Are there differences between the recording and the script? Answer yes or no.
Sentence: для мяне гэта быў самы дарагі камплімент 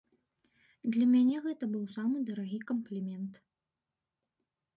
no